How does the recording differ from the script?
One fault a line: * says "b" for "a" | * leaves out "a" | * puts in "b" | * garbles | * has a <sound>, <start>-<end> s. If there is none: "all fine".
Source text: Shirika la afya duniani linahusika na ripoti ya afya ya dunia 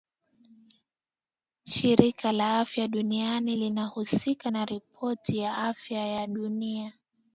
all fine